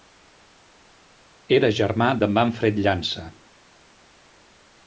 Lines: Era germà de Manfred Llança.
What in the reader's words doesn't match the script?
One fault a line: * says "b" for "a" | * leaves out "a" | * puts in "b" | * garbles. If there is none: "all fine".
all fine